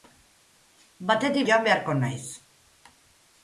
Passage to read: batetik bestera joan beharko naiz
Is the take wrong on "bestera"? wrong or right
wrong